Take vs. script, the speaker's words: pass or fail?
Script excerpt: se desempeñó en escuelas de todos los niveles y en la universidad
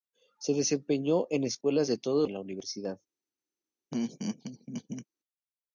fail